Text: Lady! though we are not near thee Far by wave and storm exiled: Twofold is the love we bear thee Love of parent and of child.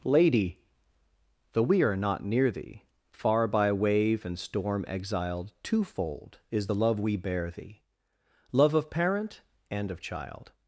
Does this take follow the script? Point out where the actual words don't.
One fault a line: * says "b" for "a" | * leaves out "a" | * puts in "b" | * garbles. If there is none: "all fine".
all fine